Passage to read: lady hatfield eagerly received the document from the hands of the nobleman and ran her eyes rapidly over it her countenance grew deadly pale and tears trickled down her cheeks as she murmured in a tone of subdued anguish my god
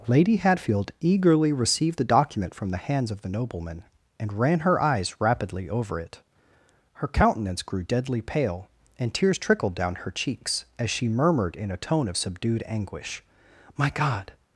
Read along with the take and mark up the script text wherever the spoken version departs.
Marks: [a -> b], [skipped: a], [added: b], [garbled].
lady hatfield eagerly received the document from the hands of the nobleman and ran her eyes rapidly over it her countenance grew deadly pale and tears trickled down her cheeks as she murmured in a tone of subdued anguish my god